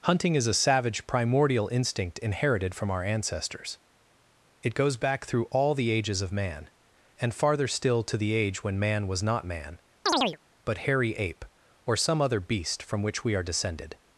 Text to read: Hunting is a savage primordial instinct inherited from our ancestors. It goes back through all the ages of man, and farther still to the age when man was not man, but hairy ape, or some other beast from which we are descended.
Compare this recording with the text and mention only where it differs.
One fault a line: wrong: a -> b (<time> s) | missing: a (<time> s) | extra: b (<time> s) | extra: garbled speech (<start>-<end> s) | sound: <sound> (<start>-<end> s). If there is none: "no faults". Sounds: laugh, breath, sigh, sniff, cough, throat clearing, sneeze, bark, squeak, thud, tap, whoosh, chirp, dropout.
sound: chirp (10.1-10.4 s)